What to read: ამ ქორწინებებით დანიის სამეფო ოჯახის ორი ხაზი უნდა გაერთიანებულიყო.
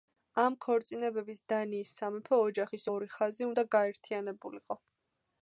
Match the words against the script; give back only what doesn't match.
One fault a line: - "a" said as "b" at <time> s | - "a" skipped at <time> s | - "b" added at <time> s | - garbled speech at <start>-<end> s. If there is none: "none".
none